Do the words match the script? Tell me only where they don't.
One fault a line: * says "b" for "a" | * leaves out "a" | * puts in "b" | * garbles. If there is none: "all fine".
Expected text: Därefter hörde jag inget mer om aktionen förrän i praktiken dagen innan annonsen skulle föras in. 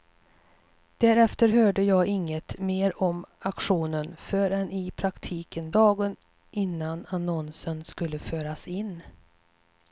all fine